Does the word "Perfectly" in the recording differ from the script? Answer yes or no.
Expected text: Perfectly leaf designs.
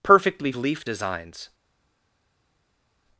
no